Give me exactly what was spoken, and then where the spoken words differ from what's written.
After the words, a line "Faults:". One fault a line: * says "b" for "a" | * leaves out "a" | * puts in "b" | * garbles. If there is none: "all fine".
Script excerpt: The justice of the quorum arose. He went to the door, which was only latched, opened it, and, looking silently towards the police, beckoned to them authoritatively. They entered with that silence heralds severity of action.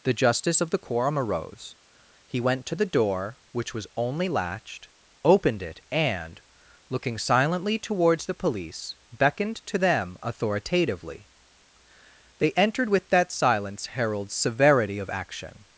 The justice of the quorum arose. He went to the door, which was only latched, opened it, and, looking silently towards the police, beckoned to them authoritatively. They entered with that silence heralds severity of action.
Faults:
all fine